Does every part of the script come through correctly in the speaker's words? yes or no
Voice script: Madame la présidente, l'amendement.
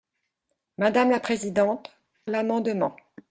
yes